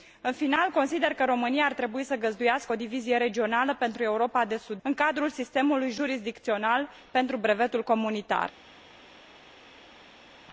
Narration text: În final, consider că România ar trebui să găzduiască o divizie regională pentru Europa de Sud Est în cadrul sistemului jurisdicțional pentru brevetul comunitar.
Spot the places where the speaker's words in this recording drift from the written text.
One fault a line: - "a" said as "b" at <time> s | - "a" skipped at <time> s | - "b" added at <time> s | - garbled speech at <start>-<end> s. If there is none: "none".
- "Est" skipped at 4.8 s